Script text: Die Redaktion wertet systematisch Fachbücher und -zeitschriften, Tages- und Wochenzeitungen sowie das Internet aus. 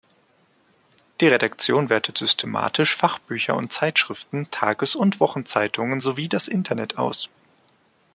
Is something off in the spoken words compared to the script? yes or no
no